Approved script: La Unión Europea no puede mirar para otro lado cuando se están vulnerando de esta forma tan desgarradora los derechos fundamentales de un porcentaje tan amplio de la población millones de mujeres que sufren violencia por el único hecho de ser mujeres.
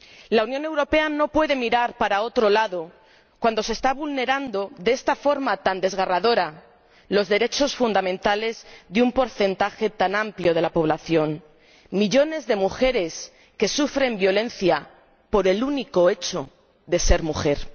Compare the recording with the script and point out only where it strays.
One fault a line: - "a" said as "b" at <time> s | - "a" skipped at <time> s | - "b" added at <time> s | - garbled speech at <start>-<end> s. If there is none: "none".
none